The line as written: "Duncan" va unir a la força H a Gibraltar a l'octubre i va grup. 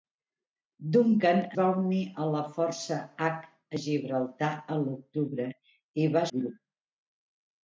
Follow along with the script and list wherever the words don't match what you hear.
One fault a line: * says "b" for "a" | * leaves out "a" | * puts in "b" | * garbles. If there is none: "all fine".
all fine